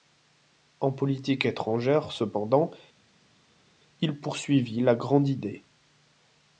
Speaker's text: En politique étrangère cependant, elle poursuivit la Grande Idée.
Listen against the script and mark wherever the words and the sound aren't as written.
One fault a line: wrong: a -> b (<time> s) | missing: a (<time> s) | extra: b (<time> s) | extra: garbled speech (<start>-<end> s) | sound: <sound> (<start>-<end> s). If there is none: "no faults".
wrong: elle -> il (4.0 s)